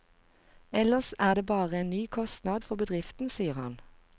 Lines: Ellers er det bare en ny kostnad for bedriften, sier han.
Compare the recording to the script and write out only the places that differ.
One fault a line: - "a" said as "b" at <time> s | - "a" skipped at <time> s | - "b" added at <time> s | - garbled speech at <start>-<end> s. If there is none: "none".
none